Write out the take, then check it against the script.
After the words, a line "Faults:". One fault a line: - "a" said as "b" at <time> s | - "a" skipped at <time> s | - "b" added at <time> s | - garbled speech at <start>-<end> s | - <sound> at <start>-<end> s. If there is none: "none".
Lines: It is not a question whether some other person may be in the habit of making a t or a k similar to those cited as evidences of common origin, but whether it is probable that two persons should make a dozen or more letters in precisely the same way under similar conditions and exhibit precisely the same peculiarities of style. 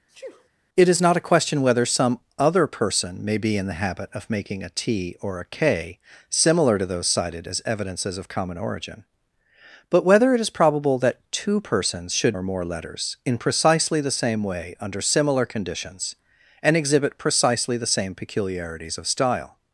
It is not a question whether some other person may be in the habit of making a t or a k similar to those cited as evidences of common origin, but whether it is probable that two persons should or more letters in precisely the same way under similar conditions and exhibit precisely the same peculiarities of style.
Faults:
- sneeze at 0.1-0.5 s
- "make a dozen" skipped at 12.4 s